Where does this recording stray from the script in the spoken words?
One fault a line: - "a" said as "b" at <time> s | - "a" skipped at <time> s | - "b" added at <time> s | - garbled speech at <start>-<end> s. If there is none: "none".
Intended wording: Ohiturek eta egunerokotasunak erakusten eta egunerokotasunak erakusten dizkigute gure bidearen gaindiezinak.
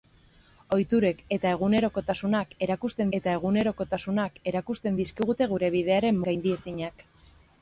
none